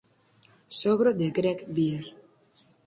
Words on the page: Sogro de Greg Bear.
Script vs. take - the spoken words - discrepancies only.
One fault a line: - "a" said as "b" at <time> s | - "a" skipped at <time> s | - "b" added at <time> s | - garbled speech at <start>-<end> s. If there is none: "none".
none